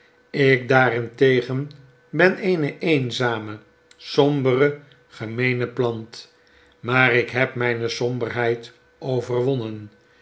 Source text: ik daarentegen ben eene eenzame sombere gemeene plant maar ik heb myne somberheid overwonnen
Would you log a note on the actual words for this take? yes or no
no